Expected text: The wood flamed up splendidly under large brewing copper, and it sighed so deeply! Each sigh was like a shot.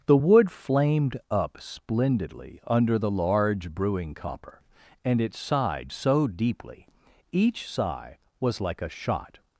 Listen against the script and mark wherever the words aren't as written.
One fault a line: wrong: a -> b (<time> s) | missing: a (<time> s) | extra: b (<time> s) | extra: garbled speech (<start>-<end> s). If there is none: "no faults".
extra: the (3.0 s)